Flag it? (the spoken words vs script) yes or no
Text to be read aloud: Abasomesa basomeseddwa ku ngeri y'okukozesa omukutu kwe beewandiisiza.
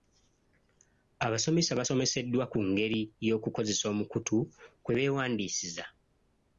no